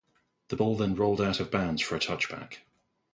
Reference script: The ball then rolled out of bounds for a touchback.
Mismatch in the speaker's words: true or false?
false